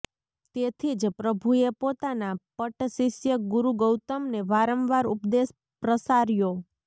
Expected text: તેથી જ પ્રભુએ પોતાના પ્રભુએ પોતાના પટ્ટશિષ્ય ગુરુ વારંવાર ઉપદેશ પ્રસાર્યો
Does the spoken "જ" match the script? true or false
true